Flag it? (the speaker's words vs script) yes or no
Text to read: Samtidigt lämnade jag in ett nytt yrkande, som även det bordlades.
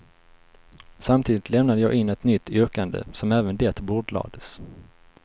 no